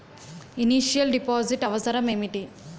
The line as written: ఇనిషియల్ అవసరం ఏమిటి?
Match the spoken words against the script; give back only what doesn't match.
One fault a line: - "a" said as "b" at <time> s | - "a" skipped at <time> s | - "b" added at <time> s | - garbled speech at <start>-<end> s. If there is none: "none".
- "డిపాజిట్" added at 1.1 s